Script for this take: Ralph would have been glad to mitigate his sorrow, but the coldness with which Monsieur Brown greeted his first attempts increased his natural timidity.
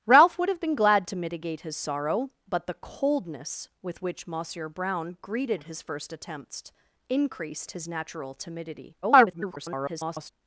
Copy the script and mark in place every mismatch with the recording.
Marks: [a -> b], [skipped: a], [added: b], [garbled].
Ralph would have been glad to mitigate his sorrow, but the coldness with which Monsieur Brown greeted his first attempts increased his natural timidity. [garbled]